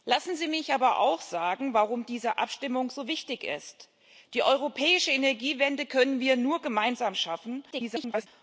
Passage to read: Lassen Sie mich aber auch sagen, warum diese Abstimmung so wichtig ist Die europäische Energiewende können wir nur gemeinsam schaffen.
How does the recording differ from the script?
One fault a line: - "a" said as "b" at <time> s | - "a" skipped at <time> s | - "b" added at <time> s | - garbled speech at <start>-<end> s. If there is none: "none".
- garbled speech at 7.7-8.3 s